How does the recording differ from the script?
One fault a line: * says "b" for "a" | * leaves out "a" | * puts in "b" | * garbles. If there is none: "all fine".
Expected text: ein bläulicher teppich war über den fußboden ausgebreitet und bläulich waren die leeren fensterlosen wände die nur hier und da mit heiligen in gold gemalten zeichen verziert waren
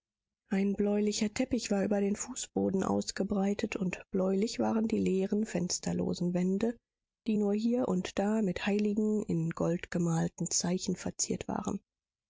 all fine